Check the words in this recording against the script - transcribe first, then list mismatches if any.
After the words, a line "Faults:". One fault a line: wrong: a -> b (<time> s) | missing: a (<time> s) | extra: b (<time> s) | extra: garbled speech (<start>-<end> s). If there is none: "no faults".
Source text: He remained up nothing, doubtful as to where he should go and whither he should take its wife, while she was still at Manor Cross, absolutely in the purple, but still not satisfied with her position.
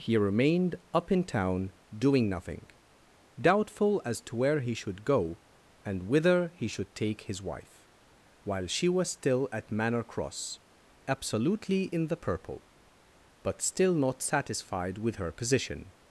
He remained up in town doing nothing, doubtful as to where he should go and whither he should take his wife, while she was still at Manor Cross, absolutely in the purple, but still not satisfied with her position.
Faults:
extra: in town doing (1.1 s)
wrong: its -> his (7.2 s)